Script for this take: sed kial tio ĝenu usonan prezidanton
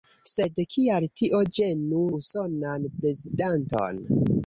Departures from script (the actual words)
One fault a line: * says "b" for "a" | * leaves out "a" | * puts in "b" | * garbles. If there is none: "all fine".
all fine